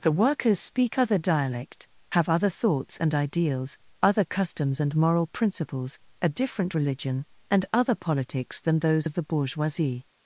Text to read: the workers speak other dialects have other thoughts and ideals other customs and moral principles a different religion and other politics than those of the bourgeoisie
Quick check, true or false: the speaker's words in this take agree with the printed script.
false